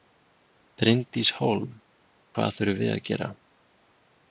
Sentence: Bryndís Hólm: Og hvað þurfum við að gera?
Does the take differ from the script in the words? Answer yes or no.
yes